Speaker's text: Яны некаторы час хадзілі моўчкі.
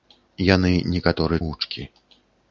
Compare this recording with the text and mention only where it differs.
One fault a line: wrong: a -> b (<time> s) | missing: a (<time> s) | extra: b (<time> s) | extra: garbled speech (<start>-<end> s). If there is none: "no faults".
missing: час хадзілі (1.4 s)